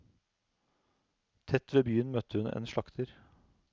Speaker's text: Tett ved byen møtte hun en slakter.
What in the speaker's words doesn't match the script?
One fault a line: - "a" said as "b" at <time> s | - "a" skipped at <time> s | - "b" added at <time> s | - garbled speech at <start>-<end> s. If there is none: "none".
none